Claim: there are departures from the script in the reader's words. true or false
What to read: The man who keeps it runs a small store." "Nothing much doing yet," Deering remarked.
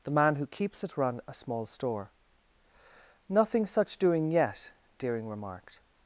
true